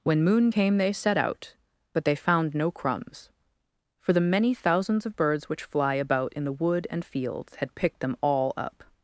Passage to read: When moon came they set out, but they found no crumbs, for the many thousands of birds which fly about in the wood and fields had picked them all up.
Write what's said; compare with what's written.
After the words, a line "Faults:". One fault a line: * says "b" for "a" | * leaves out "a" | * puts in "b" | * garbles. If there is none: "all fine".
When moon came they set out, but they found no crumbs, for the many thousands of birds which fly about in the wood and fields had picked them all up.
Faults:
all fine